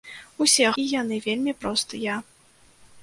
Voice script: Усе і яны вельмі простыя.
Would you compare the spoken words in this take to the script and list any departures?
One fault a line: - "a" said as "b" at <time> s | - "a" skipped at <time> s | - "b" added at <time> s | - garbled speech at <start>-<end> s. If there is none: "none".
none